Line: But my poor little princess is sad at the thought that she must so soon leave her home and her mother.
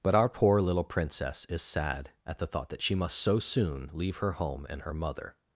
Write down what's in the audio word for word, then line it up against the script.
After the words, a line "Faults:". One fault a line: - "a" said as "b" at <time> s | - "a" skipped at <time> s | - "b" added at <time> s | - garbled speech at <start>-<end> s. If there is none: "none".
But our poor little princess is sad at the thought that she must so soon leave her home and her mother.
Faults:
- "my" said as "our" at 0.1 s